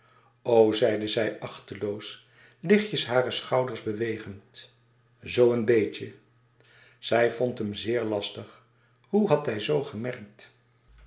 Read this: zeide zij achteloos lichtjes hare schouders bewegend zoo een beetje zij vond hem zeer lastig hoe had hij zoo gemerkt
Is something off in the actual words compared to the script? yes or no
no